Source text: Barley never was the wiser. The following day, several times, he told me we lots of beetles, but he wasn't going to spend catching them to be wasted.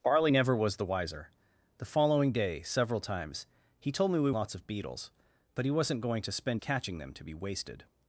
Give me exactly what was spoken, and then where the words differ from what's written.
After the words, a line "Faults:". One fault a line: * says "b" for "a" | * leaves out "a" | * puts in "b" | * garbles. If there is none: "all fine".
Barley never was the wiser. The following day, several times, he told me we lots of beetles, but he wasn't going to spend catching them to be wasted.
Faults:
all fine